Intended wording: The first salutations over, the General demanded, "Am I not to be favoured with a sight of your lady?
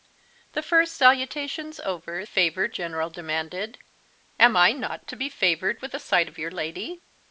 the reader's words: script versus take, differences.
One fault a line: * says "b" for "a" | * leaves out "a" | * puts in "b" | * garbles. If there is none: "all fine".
* says "favoured" for "the"